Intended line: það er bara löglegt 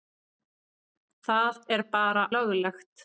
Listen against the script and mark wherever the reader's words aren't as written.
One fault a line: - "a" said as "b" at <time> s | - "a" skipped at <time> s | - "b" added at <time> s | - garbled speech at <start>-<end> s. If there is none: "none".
none